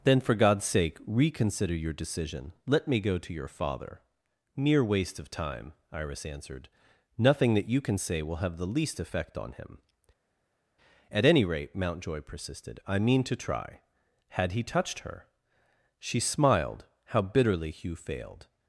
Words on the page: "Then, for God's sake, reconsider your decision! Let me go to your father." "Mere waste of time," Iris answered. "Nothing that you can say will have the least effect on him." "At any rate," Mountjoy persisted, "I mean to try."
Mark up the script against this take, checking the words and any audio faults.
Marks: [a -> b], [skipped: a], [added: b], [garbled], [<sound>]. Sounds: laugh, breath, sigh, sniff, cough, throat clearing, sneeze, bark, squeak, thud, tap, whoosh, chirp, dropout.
"Then, for God's sake, reconsider your decision! Let me go to your father." "Mere waste of time," Iris answered. "Nothing that you can say will have the least effect on him." "At any rate," Mountjoy persisted, "I mean to try." [added: Had he touched her She smiled how bitterly Hugh failed]